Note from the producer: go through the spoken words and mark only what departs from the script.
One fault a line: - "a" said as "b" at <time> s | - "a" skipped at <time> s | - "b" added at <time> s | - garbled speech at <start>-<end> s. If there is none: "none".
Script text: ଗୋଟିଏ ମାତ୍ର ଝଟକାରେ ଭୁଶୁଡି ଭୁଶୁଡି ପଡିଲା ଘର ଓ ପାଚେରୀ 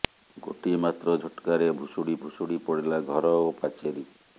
none